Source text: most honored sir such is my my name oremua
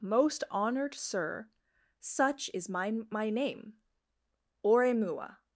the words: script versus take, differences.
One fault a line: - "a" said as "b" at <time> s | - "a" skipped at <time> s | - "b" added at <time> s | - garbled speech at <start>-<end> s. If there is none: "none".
none